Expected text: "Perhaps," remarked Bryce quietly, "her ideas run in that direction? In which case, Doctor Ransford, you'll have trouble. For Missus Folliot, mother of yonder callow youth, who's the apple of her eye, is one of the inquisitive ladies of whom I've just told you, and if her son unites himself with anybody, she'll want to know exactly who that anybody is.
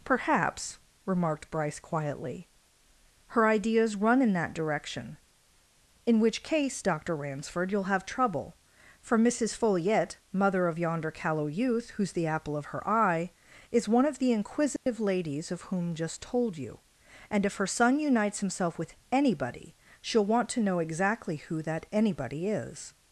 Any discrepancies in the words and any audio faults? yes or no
yes